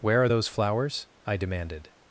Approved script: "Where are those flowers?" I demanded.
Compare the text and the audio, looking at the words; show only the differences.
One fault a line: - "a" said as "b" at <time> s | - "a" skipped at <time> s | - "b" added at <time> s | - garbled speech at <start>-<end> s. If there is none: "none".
none